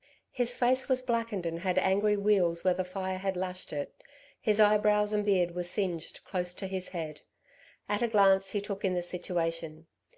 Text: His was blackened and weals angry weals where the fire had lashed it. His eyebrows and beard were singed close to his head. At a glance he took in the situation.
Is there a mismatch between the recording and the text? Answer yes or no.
yes